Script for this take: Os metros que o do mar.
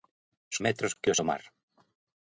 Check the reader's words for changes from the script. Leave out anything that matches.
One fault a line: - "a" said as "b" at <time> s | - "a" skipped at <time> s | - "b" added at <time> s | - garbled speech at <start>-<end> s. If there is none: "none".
none